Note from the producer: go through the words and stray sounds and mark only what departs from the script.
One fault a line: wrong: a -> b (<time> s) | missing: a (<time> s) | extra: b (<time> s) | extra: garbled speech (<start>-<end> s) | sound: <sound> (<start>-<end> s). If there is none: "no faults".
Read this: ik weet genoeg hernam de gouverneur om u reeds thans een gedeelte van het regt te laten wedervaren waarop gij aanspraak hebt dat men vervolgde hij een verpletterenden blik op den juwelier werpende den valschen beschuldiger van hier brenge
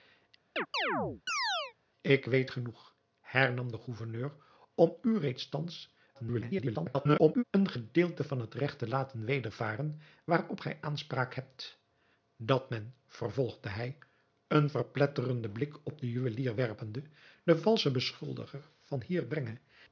sound: chirp (0.6-1.7 s)
extra: garbled speech (6.1-7.4 s)